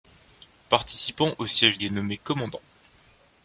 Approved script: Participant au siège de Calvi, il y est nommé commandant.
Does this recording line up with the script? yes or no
no